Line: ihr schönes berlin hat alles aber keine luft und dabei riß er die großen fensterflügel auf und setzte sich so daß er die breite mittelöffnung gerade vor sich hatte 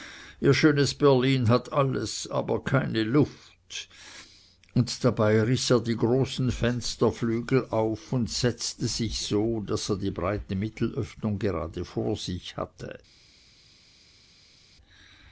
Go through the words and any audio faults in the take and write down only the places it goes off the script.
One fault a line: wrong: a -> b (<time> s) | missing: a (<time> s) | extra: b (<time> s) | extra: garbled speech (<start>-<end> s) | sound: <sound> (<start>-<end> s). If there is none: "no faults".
no faults